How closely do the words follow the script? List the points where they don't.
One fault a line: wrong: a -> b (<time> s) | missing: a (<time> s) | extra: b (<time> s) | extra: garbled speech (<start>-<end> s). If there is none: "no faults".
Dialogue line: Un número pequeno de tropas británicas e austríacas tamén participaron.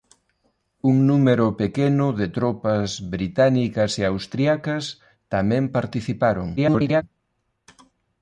extra: garbled speech (6.6-7.0 s)